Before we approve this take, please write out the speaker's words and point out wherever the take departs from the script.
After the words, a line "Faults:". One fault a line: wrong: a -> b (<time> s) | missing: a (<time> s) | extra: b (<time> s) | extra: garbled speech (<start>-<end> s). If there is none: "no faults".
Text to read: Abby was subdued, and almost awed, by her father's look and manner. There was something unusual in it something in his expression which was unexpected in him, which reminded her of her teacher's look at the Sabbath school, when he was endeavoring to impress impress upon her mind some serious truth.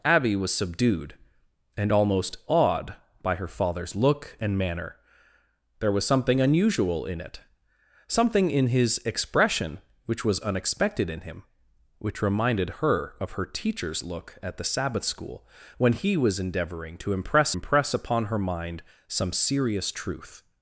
Abby was subdued, and almost awed, by her father's look and manner. There was something unusual in it something in his expression which was unexpected in him, which reminded her of her teacher's look at the Sabbath school, when he was endeavoring to impress impress upon her mind some serious truth.
Faults:
no faults